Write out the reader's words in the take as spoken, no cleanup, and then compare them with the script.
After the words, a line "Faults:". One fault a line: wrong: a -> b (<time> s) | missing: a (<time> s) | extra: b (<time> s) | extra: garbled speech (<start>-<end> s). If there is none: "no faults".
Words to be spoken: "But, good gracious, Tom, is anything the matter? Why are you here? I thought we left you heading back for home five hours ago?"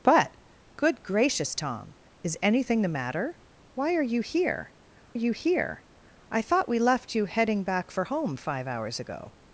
"But, good gracious, Tom, is anything the matter? Why are you here you here? I thought we left you heading back for home five hours ago?"
Faults:
extra: you here (5.1 s)